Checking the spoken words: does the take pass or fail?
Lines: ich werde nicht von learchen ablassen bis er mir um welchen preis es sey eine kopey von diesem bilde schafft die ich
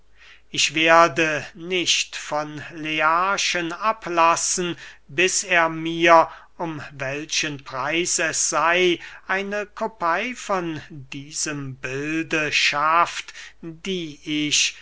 pass